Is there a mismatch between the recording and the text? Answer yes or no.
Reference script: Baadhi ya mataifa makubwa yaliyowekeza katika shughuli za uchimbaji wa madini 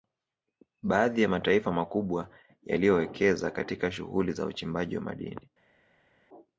no